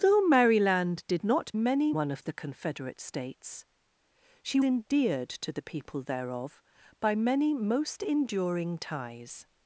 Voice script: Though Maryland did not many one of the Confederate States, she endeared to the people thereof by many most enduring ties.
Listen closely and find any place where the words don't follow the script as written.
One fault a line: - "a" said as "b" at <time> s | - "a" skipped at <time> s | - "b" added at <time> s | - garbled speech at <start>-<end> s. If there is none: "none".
none